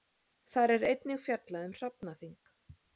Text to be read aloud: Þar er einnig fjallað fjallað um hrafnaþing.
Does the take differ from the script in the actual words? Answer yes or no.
yes